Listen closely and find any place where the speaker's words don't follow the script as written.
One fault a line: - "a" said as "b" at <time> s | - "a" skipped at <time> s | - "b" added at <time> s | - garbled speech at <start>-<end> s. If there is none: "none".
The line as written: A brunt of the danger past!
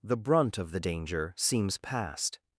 - "A" said as "The" at 0.0 s
- "seems" added at 1.4 s